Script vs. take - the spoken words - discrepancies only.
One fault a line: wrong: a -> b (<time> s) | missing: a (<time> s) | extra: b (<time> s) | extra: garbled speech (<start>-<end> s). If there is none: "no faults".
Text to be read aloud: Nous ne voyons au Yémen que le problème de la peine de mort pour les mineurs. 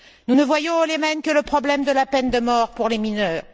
no faults